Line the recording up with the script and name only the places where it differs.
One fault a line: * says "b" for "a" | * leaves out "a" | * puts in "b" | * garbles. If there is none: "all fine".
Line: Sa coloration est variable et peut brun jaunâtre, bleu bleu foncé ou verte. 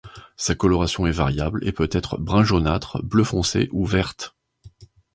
* puts in "être"
* leaves out "bleu"